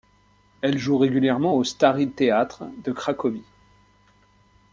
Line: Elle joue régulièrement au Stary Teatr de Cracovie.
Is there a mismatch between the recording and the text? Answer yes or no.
no